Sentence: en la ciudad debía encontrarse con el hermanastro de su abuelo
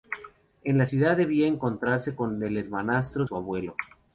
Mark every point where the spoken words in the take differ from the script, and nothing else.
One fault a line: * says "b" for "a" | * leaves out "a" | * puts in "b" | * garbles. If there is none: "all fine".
* leaves out "de"